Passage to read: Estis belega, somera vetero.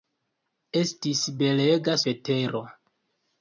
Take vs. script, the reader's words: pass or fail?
fail